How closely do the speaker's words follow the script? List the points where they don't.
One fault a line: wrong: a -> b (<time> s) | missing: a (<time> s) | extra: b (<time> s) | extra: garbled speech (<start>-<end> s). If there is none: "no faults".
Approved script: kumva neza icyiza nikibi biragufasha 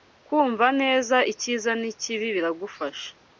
no faults